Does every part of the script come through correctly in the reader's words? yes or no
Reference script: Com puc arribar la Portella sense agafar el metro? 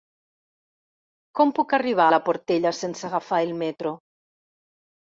yes